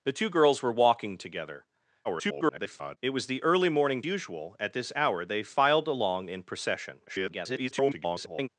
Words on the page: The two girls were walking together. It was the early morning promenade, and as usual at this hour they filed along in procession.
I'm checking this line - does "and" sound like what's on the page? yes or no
no